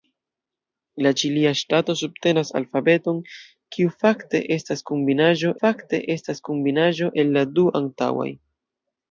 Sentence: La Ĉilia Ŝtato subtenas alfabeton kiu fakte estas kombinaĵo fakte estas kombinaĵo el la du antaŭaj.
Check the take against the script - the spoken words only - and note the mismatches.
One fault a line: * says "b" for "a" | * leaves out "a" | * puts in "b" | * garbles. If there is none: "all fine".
all fine